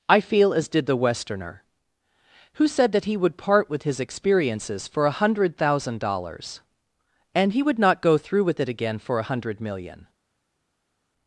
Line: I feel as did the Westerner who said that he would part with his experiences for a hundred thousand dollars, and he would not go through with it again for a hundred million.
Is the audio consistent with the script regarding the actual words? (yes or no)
yes